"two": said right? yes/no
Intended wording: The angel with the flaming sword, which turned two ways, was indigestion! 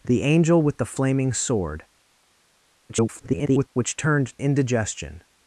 no